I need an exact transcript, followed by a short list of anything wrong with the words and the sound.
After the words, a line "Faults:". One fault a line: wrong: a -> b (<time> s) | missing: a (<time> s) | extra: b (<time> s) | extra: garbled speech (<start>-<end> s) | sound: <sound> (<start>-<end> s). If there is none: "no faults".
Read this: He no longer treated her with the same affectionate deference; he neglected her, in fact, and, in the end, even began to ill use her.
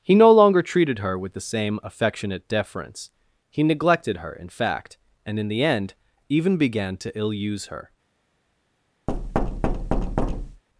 He no longer treated her with the same affectionate deference; he neglected her, in fact, and, in the end, even began to ill use her.
Faults:
sound: thud (9.1-10.6 s)